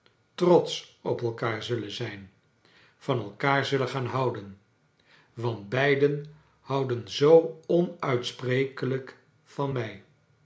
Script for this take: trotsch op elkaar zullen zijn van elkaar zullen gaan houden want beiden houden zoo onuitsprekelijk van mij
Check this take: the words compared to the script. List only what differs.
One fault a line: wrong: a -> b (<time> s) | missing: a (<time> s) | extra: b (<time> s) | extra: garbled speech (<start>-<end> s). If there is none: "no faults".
no faults